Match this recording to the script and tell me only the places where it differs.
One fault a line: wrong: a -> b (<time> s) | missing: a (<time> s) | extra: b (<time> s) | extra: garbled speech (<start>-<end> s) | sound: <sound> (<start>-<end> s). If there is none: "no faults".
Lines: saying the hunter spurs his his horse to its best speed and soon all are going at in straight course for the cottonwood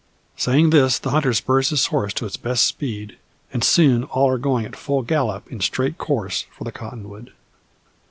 extra: this (0.7 s)
missing: his (1.9 s)
extra: full gallop (4.8 s)